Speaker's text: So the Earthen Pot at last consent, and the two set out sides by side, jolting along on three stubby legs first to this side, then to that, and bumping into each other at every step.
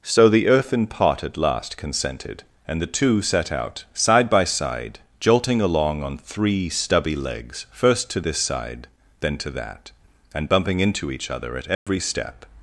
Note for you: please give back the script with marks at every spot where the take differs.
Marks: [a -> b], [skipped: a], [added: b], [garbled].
So the Earthen Pot at last [consent, -> consented] and the two set out [sides -> side] by side, jolting along on three stubby legs first to this side, then to that, and bumping into each other at every step.